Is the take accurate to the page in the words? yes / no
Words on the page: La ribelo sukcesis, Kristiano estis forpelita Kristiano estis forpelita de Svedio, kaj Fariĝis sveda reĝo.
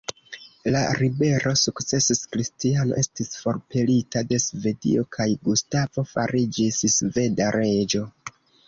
no